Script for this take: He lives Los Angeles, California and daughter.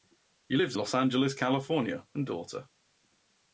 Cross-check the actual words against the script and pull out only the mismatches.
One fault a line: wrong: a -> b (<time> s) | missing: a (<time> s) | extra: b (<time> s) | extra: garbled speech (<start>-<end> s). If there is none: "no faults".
no faults